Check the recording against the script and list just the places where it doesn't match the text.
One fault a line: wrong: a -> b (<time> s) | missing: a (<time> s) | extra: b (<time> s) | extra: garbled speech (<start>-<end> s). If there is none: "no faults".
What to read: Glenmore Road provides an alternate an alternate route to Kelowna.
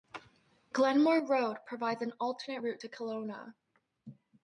missing: an alternate (2.6 s)